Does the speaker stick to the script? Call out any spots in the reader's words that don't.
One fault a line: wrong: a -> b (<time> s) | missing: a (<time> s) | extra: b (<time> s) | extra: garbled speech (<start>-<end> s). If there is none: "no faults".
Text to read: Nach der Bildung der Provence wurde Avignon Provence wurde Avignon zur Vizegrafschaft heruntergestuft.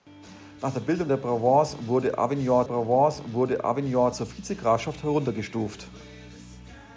no faults